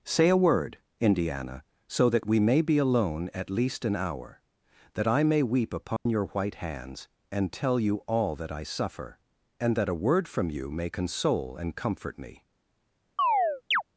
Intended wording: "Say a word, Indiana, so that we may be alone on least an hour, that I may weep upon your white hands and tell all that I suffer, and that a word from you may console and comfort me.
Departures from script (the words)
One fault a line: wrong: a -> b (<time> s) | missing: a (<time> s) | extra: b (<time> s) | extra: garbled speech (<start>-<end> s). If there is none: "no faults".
wrong: on -> at (3.3 s)
extra: you (7.8 s)